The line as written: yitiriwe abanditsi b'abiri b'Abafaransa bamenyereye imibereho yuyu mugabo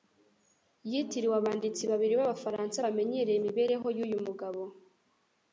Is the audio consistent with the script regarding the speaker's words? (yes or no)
yes